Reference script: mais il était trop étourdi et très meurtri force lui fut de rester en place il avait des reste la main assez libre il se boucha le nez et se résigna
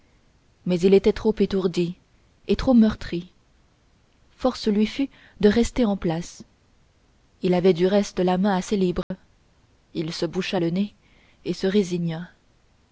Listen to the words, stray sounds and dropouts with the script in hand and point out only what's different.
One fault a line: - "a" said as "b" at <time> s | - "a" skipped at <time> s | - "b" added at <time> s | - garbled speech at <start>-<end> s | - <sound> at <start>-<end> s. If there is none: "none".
- "très" said as "trop" at 2.5 s
- "des" said as "du" at 7.7 s
- dropout at 9.0-9.1 s